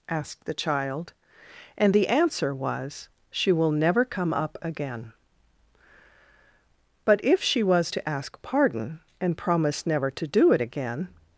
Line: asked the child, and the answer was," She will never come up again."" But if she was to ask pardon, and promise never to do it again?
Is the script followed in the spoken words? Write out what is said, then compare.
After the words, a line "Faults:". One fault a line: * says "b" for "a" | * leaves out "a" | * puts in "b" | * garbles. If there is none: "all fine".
asked the child, and the answer was," She will never come up again."" But if she was to ask pardon, and promise never to do it again?
Faults:
all fine